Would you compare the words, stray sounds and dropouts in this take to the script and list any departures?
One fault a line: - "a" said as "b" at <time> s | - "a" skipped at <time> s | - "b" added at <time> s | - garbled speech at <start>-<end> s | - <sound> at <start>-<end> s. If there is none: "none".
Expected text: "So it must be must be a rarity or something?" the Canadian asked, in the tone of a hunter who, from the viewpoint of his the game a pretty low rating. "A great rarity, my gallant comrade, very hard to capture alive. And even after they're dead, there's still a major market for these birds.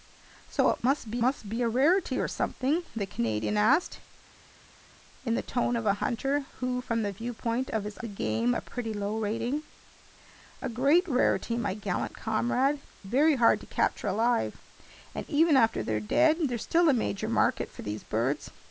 none